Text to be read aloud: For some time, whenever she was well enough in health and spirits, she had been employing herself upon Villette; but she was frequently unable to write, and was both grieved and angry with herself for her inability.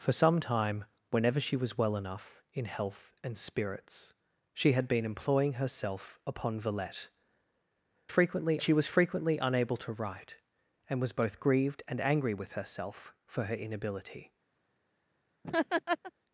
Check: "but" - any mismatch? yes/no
yes